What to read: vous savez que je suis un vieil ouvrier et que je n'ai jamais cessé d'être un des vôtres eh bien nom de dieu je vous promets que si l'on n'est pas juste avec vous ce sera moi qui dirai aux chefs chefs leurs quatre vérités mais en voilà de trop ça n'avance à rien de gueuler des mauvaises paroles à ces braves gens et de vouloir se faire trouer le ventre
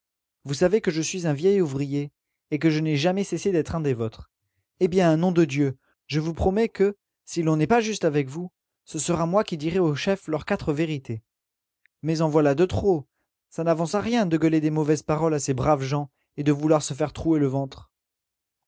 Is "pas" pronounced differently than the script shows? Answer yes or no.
no